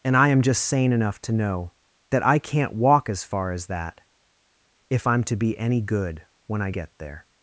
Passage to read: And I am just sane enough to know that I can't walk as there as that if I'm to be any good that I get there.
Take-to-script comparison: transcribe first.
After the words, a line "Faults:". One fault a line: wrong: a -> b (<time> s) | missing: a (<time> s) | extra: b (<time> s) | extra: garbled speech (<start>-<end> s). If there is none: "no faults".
And I am just sane enough to know that I can't walk as far as that if I'm to be any good when I get there.
Faults:
wrong: there -> far (3.2 s)
wrong: that -> when (6.5 s)